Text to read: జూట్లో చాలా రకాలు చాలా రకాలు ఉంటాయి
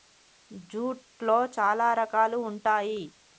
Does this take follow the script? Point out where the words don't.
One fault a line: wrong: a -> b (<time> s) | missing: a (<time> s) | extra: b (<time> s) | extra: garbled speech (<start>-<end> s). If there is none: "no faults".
missing: చాలా రకాలు (2.4 s)